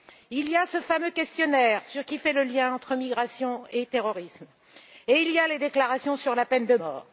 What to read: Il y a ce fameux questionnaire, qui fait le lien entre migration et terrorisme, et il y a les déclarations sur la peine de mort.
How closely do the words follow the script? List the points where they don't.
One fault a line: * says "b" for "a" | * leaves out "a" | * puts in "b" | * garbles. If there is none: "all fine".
all fine